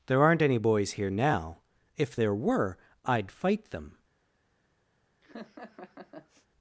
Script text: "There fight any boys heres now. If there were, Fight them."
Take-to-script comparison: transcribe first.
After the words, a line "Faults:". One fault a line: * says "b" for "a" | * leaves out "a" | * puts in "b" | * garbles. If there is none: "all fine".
"There aren't any boys here now. If there were, I'd fight them."
Faults:
* says "aren't" for "fight"
* says "here" for "heres"
* puts in "I'd"